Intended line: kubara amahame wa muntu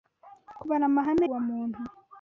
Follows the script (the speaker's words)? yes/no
yes